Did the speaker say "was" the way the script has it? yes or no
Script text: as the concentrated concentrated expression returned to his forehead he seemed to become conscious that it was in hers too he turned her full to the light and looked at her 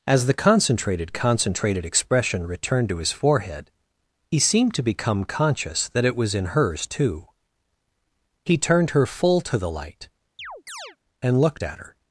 yes